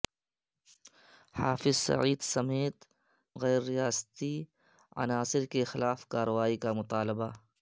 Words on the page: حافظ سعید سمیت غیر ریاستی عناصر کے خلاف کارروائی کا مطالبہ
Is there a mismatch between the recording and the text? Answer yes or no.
no